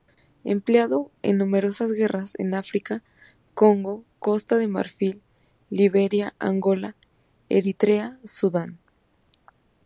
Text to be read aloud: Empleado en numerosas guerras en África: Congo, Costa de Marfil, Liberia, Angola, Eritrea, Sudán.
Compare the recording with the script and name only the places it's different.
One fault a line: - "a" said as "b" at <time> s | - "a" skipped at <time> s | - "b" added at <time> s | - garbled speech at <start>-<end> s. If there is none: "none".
none